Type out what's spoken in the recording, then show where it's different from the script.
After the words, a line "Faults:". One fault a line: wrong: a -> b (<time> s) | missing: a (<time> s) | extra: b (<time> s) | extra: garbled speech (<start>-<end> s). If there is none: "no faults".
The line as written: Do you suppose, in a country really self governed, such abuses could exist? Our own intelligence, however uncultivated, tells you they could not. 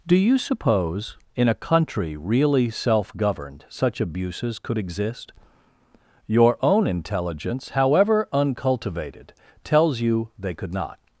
Do you suppose, in a country really self governed, such abuses could exist? Your own intelligence, however uncultivated, tells you they could not.
Faults:
wrong: Our -> Your (6.2 s)